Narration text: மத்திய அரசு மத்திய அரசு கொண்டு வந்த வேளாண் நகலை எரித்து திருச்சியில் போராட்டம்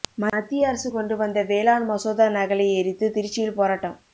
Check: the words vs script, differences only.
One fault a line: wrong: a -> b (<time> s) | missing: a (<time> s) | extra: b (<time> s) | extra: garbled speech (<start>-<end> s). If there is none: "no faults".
missing: மத்திய அரசு (0.9 s)
extra: மசோதா (1.9 s)